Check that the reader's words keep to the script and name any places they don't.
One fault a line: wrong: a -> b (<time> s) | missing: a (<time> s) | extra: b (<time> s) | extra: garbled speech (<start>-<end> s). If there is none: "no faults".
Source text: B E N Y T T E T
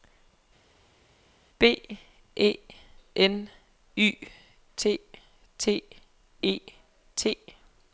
no faults